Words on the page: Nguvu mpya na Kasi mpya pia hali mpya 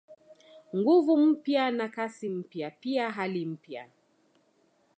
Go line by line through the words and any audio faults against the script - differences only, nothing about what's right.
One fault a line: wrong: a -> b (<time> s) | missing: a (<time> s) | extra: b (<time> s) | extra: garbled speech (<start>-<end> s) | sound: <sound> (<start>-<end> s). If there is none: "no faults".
no faults